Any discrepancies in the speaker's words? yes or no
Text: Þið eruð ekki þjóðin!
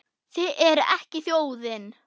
no